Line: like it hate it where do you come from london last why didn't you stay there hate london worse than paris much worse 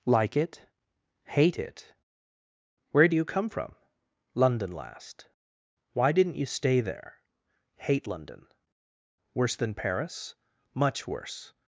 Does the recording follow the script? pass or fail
pass